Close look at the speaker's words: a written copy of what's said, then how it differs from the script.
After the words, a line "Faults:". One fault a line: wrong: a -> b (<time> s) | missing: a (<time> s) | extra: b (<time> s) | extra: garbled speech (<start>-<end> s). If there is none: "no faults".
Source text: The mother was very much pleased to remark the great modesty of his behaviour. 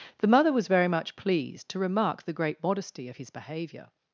The mother was very much pleased to remark the great modesty of his behaviour.
Faults:
no faults